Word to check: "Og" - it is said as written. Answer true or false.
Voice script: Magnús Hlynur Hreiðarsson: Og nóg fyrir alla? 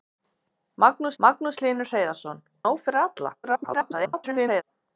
false